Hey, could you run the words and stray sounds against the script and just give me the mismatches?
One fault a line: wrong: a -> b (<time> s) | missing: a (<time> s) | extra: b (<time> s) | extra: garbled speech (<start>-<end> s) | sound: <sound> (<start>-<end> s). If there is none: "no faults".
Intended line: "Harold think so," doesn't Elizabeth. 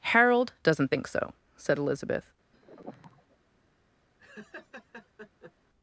extra: doesn't (0.6 s)
wrong: doesn't -> said (1.6 s)
sound: sigh (2.5-3.4 s)
sound: laugh (4.2-5.5 s)